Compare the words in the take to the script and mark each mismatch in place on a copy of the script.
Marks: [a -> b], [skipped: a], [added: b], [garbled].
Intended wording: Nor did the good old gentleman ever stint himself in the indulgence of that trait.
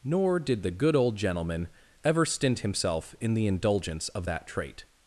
Nor did the good old gentleman ever stint himself in the indulgence of that trait.